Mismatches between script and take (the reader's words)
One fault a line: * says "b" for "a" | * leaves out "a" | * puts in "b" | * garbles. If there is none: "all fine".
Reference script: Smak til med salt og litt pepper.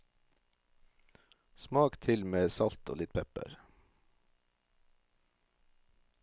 all fine